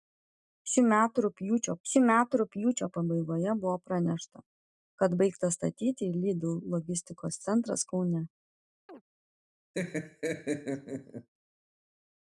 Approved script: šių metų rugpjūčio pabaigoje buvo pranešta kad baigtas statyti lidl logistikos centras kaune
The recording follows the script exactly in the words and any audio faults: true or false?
false